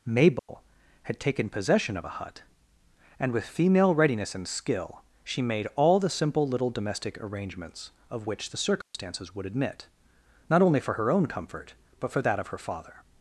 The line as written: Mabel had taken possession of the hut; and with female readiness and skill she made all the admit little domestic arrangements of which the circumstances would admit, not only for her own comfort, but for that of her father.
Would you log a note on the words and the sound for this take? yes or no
yes